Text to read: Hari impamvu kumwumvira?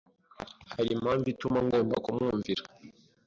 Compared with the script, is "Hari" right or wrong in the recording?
right